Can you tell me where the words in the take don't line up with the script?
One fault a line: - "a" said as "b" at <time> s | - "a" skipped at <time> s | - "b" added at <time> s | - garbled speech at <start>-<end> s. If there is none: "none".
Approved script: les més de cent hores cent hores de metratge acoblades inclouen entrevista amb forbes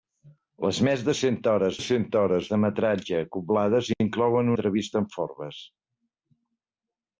none